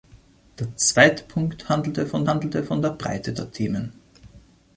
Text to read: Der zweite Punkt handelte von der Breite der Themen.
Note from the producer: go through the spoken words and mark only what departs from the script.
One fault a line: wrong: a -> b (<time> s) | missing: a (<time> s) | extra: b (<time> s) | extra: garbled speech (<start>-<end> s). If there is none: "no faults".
extra: handelte von (2.3 s)